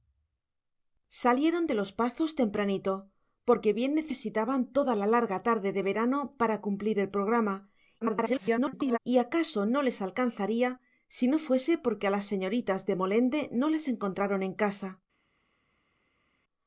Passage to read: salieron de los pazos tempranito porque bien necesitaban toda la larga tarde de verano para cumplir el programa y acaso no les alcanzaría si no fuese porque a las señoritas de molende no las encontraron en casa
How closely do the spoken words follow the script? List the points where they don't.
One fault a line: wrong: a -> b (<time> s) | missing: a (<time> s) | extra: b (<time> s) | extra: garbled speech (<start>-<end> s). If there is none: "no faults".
extra: garbled speech (8.0-9.0 s)